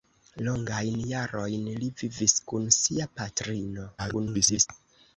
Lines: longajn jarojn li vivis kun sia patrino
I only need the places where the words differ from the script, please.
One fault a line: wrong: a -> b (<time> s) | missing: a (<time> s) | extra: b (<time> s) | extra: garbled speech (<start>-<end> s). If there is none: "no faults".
extra: garbled speech (4.0-4.7 s)